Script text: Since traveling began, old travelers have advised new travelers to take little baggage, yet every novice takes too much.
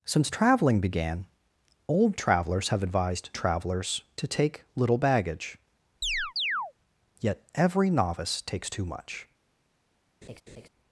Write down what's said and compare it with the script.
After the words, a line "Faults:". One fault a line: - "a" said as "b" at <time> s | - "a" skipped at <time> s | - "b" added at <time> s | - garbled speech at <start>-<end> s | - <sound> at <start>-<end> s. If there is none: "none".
Since traveling began, old travelers have advised travelers to take little baggage, yet every novice takes too much.
Faults:
- "new" skipped at 3.3 s
- chirp at 6.0-6.7 s
- laugh at 10.2-10.7 s